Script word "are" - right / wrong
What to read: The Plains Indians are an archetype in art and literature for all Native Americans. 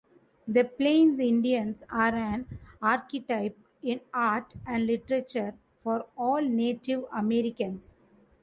right